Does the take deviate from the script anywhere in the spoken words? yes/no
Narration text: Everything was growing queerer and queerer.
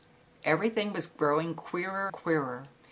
yes